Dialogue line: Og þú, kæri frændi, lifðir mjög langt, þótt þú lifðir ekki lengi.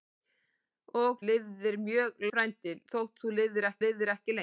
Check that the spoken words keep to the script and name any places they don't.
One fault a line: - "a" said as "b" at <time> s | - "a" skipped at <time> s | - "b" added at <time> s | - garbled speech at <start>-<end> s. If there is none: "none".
- "þú kæri frændi" skipped at 1.2 s
- "langt" said as "frændi" at 2.3 s
- "lifðir ekki" added at 3.9 s